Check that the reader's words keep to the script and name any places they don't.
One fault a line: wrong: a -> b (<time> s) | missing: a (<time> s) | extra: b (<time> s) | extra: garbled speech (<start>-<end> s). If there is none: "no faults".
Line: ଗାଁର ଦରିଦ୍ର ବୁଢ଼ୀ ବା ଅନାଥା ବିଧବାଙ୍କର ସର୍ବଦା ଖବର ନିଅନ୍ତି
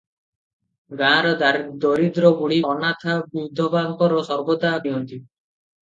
missing: ବା (2.6 s)
missing: ଖବର (4.8 s)